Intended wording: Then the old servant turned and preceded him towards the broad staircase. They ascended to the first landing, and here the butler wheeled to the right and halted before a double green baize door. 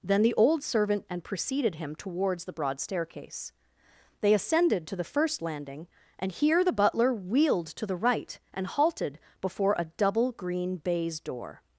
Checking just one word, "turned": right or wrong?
wrong